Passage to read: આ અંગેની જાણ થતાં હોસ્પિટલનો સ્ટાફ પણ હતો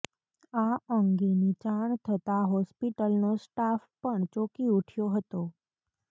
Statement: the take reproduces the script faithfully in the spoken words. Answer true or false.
false